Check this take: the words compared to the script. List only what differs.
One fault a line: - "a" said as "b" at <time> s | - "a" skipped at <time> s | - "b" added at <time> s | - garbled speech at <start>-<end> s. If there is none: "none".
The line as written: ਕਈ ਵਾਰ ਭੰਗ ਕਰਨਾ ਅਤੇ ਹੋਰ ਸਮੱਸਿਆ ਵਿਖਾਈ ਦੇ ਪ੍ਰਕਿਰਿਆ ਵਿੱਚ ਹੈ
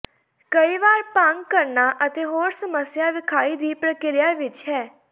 - "ਦੇ" said as "ਦੀ" at 3.6 s